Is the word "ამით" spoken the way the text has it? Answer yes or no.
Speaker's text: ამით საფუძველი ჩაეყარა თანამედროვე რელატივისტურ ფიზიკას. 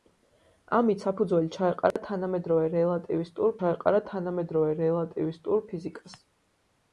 yes